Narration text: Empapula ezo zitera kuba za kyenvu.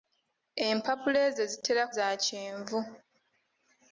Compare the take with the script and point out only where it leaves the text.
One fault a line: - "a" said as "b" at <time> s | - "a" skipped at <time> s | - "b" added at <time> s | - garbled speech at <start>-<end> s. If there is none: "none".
- "kuba" skipped at 1.8 s